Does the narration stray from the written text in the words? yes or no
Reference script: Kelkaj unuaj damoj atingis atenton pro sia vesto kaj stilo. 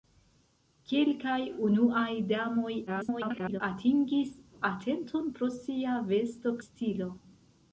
yes